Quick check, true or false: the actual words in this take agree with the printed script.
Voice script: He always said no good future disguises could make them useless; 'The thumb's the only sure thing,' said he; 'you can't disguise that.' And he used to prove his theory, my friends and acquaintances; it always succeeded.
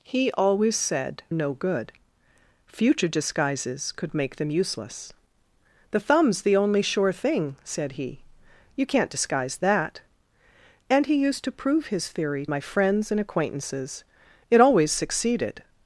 true